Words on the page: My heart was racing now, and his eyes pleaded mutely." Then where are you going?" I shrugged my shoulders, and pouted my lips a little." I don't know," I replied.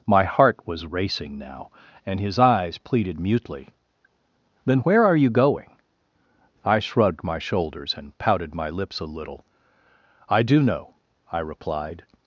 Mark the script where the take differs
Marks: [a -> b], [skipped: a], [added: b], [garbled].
My heart was racing now, and his eyes pleaded mutely." Then where are you going?" I shrugged my shoulders, and pouted my lips a little." I [don't -> do] know," I replied.